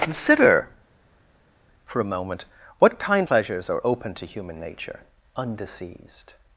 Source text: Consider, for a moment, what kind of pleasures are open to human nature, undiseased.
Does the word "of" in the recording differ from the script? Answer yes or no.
yes